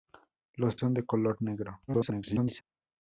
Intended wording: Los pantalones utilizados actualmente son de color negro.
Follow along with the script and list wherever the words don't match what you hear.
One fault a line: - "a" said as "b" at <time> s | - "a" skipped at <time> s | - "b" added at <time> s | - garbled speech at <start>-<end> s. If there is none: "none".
- "pantalones utilizados actualmente" skipped at 0.8 s
- garbled speech at 1.9-2.6 s